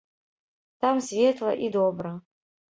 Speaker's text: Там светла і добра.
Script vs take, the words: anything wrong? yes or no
no